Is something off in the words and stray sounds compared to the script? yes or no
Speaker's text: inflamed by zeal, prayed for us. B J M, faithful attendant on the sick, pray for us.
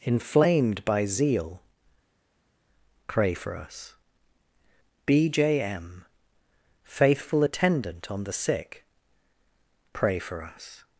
yes